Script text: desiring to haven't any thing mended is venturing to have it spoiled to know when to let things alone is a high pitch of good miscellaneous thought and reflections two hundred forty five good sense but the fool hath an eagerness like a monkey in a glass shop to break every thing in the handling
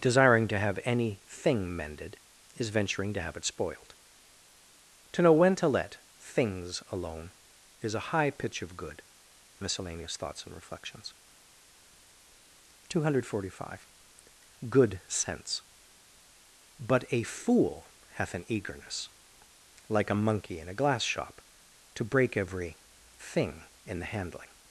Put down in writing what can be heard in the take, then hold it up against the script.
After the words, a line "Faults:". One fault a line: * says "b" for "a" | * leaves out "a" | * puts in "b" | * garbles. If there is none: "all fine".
desiring to have any thing mended is venturing to have it spoiled to know when to let things alone is a high pitch of good miscellaneous thoughts and reflections two hundred forty five good sense but a fool hath an eagerness like a monkey in a glass shop to break every thing in the handling
Faults:
* says "have" for "haven't"
* says "thoughts" for "thought"
* says "a" for "the"